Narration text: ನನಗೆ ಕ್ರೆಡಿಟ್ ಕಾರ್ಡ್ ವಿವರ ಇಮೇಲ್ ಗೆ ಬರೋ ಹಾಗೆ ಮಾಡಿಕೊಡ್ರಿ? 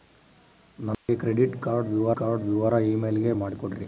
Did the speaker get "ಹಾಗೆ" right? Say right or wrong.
wrong